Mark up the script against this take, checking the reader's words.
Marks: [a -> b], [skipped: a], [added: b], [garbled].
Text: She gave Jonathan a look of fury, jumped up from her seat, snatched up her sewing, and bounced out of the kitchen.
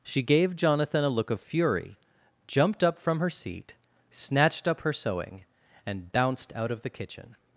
She gave Jonathan a look of fury, jumped up from her seat, snatched up her sewing, and bounced out of the kitchen.